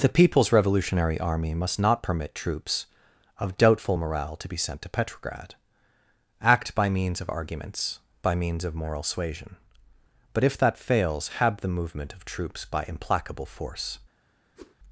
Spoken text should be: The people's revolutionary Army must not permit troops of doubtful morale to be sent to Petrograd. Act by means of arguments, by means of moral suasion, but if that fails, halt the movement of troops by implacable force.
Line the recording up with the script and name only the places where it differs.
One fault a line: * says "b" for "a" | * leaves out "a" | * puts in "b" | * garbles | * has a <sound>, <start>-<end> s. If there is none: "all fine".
* says "have" for "halt"
* has a whoosh, 14.6-14.8 s